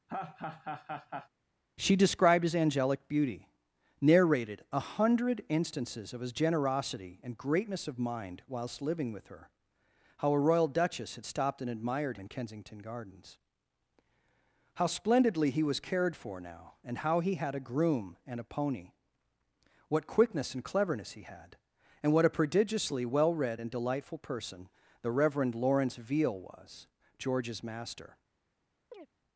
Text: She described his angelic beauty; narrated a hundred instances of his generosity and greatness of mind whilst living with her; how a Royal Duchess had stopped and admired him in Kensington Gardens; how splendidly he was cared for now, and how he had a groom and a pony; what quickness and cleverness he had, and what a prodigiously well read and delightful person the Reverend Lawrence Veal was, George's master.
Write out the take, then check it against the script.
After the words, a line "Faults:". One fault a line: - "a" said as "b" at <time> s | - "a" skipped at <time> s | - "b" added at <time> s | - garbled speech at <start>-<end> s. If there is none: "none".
She described his angelic beauty; narrated a hundred instances of his generosity and greatness of mind whilst living with her; how a Royal Duchess had stopped and admired in Kensington Gardens; how splendidly he was cared for now, and how he had a groom and a pony; what quickness and cleverness he had, and what a prodigiously well read and delightful person the Reverend Lawrence Veal was, George's master.
Faults:
- "him" skipped at 12.2 s